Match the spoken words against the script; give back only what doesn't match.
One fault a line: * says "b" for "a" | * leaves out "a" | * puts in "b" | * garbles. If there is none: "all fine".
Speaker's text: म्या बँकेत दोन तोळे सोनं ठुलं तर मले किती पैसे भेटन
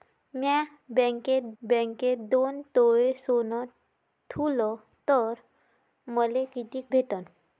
* puts in "बँकेत"
* leaves out "पैसे"